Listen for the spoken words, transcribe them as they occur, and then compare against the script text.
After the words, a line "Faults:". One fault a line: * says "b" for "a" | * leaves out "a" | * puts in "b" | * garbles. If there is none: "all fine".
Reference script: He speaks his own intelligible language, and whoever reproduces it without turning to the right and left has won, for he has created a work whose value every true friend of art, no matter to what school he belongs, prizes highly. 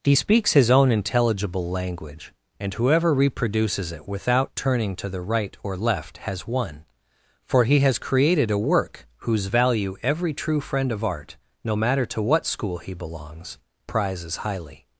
He speaks his own intelligible language, and whoever reproduces it without turning to the right or left has won, for he has created a work whose value every true friend of art, no matter to what school he belongs, prizes highly.
Faults:
* says "or" for "and"